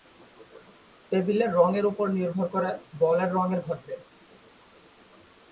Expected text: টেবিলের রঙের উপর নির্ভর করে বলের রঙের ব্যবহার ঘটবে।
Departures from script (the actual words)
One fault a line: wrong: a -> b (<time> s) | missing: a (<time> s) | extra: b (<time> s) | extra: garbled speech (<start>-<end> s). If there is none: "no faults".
missing: ব্যবহার (3.6 s)